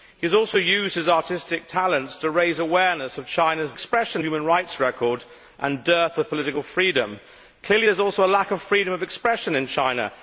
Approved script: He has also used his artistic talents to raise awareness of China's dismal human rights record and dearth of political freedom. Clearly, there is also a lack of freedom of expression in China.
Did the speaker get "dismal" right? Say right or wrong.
wrong